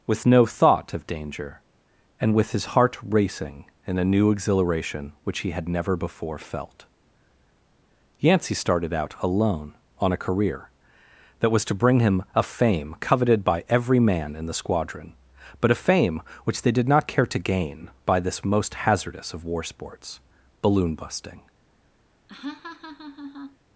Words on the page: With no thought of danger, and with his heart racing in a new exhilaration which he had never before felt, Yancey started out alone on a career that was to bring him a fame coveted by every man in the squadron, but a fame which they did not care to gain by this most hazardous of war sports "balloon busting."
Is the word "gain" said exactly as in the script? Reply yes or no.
yes